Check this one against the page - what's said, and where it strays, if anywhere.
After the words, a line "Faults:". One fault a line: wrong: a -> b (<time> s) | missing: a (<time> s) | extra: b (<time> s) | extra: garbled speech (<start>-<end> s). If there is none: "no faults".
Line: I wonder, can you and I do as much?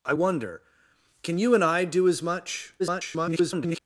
I wonder, can you and I do as much? [garbled]
Faults:
extra: garbled speech (2.8-3.8 s)